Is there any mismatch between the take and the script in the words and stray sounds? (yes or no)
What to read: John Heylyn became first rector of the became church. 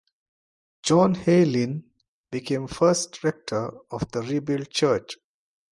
yes